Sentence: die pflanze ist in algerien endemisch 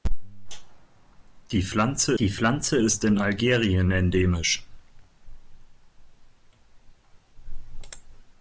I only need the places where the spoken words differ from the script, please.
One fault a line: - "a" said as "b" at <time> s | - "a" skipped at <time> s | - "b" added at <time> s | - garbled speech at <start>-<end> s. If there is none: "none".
- "die pflanze" added at 2.2 s